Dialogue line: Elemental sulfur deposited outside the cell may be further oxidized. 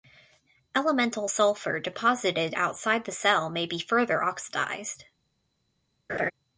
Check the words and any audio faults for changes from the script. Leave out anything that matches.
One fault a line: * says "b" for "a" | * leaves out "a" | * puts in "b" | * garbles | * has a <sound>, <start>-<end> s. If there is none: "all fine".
* has a laugh, 6.1-6.3 s